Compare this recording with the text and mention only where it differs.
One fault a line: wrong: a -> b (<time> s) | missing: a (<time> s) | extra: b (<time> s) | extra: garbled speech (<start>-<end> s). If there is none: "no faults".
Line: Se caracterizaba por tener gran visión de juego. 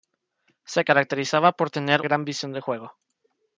no faults